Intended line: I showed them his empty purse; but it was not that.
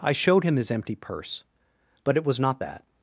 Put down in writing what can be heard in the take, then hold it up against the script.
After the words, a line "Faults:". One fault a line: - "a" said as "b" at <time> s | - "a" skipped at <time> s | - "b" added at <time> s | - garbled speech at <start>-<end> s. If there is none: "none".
I showed him his empty purse; but it was not that.
Faults:
- "them" said as "him" at 0.4 s